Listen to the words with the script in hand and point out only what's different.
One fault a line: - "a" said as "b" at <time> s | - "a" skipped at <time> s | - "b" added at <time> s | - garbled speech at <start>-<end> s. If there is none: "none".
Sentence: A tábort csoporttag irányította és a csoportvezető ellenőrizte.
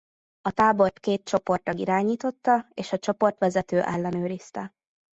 - "két" added at 1.0 s